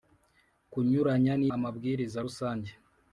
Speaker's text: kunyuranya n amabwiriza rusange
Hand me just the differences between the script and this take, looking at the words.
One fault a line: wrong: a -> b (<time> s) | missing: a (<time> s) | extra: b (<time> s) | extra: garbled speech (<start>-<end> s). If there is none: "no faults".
no faults